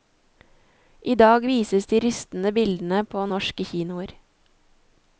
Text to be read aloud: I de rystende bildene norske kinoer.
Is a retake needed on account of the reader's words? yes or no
yes